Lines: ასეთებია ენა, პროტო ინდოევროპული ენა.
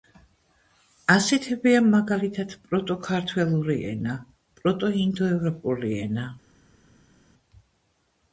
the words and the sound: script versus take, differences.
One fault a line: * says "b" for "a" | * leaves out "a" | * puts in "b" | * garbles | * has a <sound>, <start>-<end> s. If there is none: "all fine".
* puts in "მაგალითად პროტო ქართველური"